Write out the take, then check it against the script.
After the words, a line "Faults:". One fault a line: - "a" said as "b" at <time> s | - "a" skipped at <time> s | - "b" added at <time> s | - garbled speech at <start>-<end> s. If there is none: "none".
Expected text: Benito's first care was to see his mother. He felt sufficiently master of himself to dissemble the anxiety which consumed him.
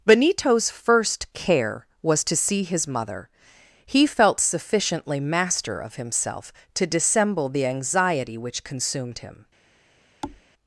Benito's first care was to see his mother. He felt sufficiently master of himself to dissemble the anxiety which consumed him.
Faults:
none